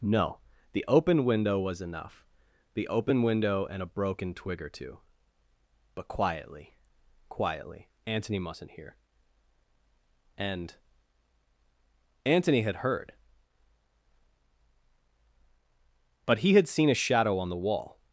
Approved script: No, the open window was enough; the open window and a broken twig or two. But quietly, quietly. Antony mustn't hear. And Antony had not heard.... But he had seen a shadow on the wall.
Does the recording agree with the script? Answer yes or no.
no